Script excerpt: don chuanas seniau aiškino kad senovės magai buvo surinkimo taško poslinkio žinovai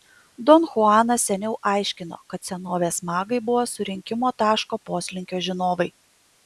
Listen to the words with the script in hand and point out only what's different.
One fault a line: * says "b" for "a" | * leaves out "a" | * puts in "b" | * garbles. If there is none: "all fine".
all fine